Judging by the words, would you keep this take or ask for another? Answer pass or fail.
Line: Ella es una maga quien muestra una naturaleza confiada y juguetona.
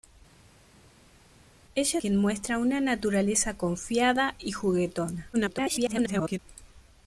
fail